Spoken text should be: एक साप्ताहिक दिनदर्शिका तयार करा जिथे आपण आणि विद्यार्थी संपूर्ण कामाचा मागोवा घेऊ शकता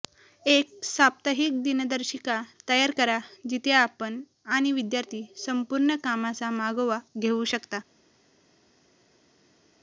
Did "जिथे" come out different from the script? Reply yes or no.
no